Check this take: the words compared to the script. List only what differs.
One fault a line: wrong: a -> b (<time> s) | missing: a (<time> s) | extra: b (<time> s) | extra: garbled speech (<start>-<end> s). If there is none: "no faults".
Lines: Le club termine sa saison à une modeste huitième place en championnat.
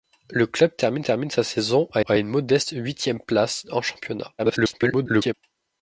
extra: termine (1.0 s)
extra: à (2.1 s)
extra: garbled speech (4.4-5.3 s)